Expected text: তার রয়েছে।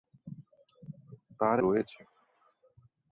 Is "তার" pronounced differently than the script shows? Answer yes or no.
no